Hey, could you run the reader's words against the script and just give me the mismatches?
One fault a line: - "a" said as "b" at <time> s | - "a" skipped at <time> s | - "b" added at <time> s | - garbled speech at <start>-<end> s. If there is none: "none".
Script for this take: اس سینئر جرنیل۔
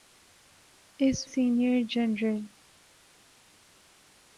none